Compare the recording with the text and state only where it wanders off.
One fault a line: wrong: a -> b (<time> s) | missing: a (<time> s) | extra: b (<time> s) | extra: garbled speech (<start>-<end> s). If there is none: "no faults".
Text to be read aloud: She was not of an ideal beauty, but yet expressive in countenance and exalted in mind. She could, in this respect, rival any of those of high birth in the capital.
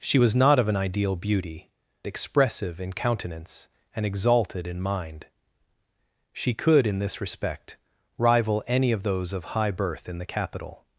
missing: but yet (1.7 s)